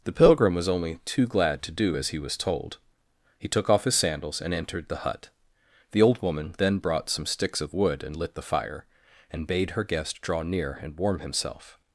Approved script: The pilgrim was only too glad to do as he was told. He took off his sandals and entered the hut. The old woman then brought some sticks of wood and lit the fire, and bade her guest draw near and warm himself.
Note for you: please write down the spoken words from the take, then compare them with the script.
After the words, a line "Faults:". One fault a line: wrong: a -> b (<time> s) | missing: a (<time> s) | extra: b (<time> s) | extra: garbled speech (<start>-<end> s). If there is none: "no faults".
The pilgrim was only too glad to do as he was told. He took off his sandals and entered the hut. The old woman then brought some sticks of wood and lit the fire, and bade her guest draw near and warm himself.
Faults:
no faults